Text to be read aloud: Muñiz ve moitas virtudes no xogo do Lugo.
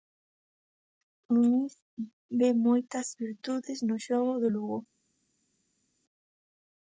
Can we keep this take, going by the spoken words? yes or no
yes